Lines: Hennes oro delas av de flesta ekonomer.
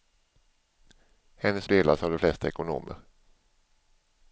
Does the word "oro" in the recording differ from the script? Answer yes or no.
yes